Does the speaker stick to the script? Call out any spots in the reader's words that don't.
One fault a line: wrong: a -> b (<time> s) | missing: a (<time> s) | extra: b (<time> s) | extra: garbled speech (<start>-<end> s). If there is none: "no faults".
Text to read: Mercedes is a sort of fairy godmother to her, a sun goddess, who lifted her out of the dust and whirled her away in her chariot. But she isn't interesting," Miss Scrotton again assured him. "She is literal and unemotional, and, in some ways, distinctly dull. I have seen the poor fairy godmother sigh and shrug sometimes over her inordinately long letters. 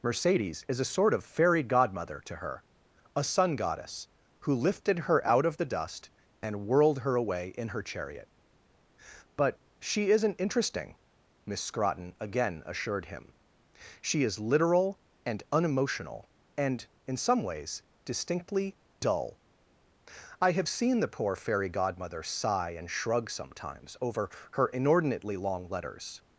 no faults